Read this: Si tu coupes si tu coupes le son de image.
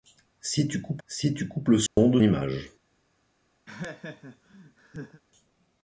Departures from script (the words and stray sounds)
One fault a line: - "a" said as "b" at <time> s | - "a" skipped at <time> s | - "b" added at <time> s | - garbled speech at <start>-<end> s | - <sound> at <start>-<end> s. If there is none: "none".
- dropout at 1.9-2.0 s
- laugh at 3.7-5.2 s